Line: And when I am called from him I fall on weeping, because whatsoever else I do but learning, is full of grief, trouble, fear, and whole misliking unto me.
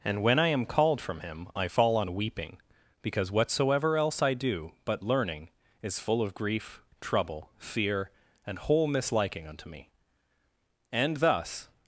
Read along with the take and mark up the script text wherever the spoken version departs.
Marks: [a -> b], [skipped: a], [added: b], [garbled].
And when I am called from him I fall on weeping, because whatsoever else I do but learning, is full of grief, trouble, fear, and whole misliking unto me. [added: And thus]